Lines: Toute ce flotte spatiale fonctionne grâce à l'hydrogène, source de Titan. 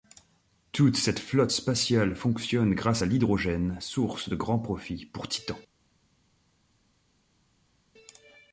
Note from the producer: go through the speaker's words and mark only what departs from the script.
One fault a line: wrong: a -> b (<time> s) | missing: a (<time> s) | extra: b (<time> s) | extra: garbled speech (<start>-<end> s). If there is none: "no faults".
wrong: ce -> cette (1.0 s)
extra: grands profits pour (4.3 s)